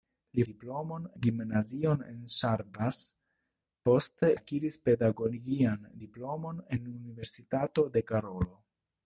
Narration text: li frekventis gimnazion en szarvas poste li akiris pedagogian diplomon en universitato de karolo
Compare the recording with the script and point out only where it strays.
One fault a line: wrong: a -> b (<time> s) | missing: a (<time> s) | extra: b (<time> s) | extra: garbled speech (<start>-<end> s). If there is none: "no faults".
wrong: frekventis -> diplomon (0.5 s)
missing: li (4.3 s)